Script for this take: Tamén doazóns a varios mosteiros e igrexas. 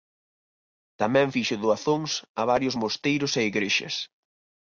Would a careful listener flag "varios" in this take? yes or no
no